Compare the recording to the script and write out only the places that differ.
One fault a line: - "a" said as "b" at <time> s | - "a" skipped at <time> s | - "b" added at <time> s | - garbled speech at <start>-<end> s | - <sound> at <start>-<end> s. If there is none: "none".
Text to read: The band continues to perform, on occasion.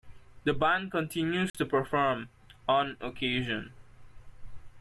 - dropout at 1.5-1.5 s